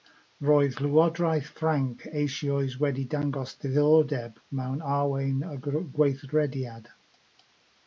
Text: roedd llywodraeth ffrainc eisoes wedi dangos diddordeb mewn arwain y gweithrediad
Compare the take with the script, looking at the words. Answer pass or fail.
pass